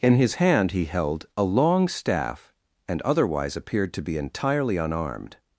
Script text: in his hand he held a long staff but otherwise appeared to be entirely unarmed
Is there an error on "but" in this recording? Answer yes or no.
yes